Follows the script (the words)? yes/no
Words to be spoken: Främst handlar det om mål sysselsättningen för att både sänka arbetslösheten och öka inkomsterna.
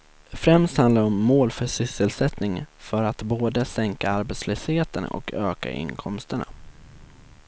no